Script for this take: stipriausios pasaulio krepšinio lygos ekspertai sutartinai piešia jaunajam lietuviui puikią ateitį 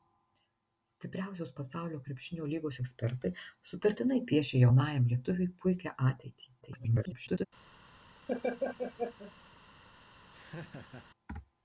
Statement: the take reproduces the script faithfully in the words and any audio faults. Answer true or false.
false